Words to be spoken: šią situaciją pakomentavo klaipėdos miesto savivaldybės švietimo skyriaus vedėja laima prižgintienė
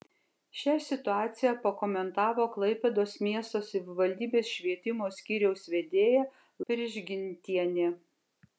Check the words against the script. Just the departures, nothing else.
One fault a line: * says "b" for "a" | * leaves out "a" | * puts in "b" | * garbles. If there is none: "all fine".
* leaves out "laima"